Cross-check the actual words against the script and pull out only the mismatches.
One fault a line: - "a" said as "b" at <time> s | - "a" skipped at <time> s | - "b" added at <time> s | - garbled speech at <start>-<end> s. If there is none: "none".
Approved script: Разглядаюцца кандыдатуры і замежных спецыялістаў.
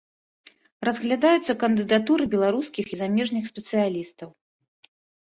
- "беларускіх" added at 2.3 s